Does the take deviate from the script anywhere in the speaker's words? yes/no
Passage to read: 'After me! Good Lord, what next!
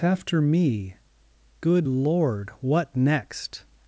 no